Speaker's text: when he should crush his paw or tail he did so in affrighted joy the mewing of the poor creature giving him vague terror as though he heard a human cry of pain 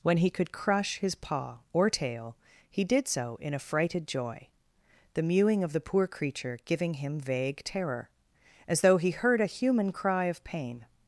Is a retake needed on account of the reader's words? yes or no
yes